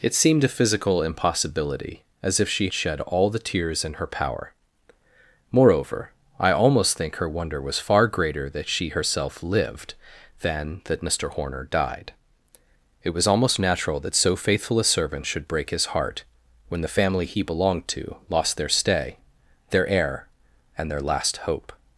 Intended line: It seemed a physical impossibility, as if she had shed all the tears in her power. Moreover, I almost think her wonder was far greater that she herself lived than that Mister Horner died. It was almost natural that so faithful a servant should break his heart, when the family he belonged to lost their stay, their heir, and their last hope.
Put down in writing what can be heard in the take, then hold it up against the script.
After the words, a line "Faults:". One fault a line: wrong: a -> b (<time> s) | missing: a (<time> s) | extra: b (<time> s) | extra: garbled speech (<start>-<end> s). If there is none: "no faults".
It seemed a physical impossibility, as if she shed all the tears in her power. Moreover, I almost think her wonder was far greater that she herself lived than that Mister Horner died. It was almost natural that so faithful a servant should break his heart, when the family he belonged to lost their stay, their heir, and their last hope.
Faults:
missing: had (2.7 s)